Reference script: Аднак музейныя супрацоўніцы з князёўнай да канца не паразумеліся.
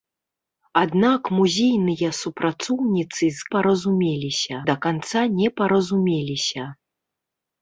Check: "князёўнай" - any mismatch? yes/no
yes